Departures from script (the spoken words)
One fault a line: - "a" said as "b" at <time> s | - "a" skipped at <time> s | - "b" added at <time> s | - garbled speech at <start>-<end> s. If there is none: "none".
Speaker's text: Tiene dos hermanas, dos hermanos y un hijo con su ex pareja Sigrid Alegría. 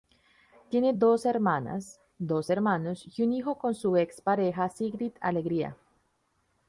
none